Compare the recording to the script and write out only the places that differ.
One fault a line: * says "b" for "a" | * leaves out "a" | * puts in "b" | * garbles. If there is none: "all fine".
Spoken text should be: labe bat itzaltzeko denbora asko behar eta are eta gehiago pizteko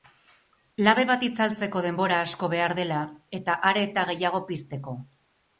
* puts in "dela"